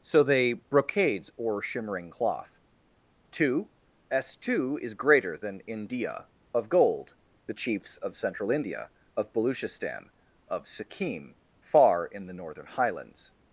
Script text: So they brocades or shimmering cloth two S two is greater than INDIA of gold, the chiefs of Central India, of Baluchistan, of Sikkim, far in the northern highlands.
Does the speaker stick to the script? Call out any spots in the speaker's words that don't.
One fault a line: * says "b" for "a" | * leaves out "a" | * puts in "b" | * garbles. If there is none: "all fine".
all fine